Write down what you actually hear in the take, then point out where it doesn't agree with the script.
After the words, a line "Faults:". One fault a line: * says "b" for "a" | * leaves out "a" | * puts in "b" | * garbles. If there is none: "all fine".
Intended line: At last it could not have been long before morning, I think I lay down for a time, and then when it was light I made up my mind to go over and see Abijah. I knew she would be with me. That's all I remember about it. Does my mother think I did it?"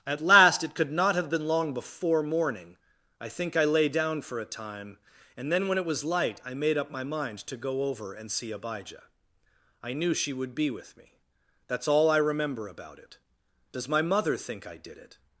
At last it could not have been long before morning, I think I lay down for a time, and then when it was light I made up my mind to go over and see Abijah. I knew she would be with me. That's all I remember about it. Does my mother think I did it?"
Faults:
all fine